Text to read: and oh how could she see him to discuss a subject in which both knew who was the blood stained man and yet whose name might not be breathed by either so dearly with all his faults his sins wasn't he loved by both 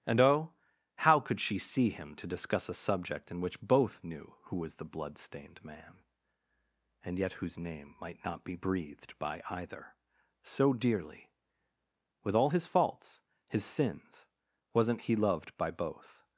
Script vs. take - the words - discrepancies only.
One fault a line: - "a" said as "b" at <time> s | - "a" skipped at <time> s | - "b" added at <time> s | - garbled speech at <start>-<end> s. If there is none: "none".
none